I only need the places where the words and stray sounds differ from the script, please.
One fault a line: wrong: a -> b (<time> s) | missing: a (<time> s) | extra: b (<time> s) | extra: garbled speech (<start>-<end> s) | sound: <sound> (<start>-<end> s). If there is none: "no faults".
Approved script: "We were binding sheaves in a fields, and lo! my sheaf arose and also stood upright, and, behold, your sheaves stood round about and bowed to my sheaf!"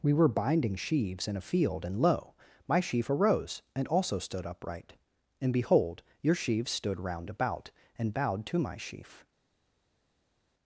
wrong: fields -> field (1.4 s)